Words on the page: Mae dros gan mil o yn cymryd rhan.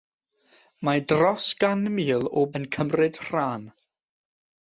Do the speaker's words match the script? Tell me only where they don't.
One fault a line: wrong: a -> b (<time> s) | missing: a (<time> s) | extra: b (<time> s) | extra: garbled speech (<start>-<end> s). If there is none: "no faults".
no faults